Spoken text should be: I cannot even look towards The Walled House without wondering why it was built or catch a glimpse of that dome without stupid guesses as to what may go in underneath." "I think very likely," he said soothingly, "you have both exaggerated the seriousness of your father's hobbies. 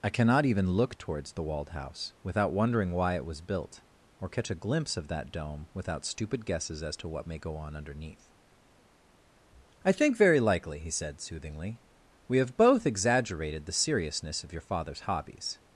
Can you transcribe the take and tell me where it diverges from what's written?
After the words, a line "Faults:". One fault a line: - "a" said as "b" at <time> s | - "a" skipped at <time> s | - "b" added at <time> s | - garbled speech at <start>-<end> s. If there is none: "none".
I cannot even look towards The Walled House without wondering why it was built or catch a glimpse of that dome without stupid guesses as to what may go on underneath." "I think very likely," he said soothingly, "we have both exaggerated the seriousness of your father's hobbies.
Faults:
- "in" said as "on" at 7.5 s
- "you" said as "we" at 12.3 s